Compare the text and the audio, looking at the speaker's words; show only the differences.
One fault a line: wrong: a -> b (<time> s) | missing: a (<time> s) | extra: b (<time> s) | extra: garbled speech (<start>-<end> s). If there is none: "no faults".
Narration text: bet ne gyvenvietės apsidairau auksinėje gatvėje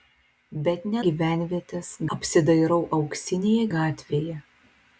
no faults